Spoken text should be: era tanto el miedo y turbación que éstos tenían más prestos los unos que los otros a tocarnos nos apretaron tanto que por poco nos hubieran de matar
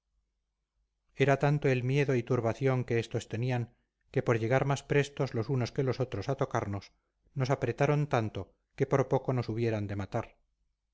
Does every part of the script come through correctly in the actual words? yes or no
no